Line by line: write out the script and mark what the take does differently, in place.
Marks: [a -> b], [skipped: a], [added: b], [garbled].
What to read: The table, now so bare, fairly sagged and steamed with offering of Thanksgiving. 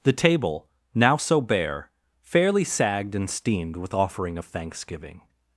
The table, now so bare, fairly sagged and steamed with offering of Thanksgiving.